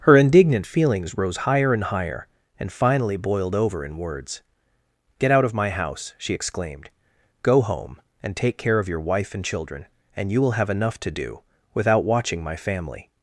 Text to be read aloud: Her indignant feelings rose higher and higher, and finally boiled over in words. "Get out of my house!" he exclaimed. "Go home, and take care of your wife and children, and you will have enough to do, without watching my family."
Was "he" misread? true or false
true